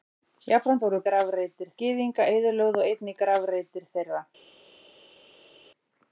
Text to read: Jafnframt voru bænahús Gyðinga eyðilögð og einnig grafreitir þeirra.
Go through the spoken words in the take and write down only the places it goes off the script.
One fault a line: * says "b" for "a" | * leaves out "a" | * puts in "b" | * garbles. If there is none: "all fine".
* says "grafreitir" for "bænahús"